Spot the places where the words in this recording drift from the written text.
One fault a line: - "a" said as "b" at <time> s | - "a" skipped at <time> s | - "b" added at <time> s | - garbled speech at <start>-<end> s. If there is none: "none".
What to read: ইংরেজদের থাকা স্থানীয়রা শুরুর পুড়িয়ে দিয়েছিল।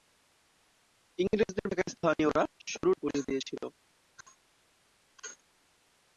none